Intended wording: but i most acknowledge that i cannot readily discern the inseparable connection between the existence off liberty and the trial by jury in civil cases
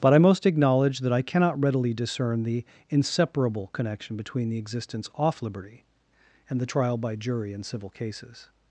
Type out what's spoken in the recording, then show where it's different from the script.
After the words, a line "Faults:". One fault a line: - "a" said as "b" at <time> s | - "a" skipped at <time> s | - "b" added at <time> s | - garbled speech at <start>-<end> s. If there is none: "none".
but i most acknowledge that i cannot readily discern the inseparable connection between the existence off liberty and the trial by jury in civil cases
Faults:
none